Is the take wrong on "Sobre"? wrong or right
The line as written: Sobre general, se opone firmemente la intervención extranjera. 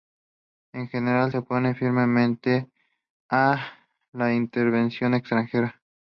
wrong